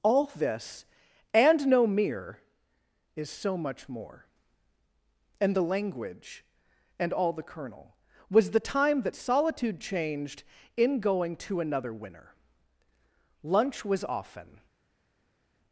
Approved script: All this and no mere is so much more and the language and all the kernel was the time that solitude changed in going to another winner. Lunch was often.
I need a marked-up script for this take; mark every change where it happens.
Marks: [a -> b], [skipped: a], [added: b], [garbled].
All this and no mere is so much more and the language and all the kernel was the time that solitude changed in going to another winner. Lunch was often.